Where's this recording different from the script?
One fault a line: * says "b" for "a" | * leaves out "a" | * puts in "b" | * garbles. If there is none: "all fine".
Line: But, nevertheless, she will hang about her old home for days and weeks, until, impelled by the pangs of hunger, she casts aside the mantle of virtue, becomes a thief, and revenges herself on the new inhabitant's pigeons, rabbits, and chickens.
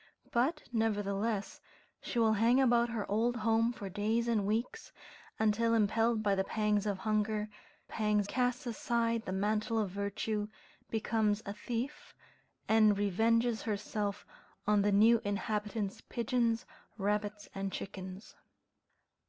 * says "pangs" for "she"